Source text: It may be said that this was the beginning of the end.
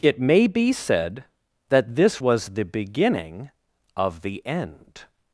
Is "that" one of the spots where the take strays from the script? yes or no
no